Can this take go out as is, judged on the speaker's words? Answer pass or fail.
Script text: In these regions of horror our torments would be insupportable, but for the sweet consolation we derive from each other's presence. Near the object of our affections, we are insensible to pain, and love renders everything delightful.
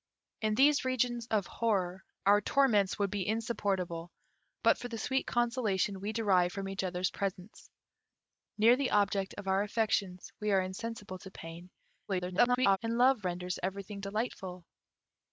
fail